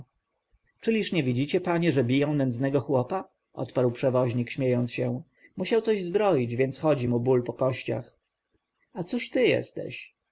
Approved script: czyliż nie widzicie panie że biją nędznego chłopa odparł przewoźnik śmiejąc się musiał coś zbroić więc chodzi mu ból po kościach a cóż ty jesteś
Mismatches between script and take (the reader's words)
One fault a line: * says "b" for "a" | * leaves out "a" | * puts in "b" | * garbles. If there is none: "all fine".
all fine